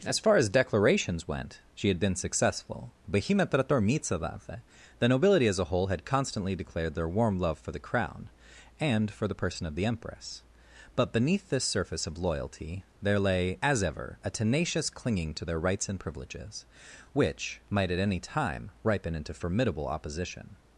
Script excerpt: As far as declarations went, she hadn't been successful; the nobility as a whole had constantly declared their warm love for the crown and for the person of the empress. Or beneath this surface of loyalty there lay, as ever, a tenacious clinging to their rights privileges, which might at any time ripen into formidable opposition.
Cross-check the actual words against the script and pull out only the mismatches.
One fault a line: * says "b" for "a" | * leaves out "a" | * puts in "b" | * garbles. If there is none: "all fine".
* says "had" for "hadn't"
* says "But" for "Or"
* puts in "and"